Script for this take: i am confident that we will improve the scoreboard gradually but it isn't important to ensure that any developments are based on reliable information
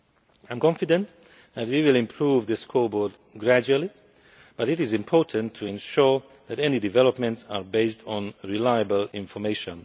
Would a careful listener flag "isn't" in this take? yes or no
yes